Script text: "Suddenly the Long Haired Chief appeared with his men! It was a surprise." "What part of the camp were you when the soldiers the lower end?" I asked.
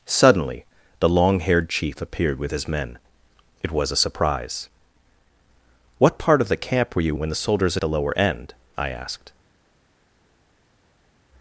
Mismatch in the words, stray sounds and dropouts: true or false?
false